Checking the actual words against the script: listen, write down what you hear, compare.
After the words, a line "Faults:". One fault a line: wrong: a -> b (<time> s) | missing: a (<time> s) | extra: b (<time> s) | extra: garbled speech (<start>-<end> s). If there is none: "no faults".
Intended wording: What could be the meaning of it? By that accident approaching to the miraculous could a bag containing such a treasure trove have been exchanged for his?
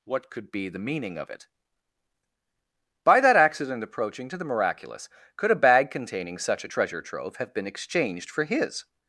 What could be the meaning of it? By that accident approaching to the miraculous could a bag containing such a treasure trove have been exchanged for his?
Faults:
no faults